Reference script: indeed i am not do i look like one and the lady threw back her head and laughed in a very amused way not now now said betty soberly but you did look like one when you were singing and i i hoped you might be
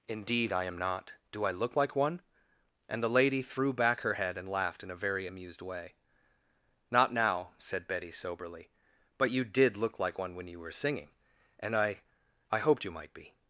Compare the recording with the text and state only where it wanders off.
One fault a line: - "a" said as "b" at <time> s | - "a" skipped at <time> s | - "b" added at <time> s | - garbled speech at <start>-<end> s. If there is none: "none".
- "now" skipped at 7.5 s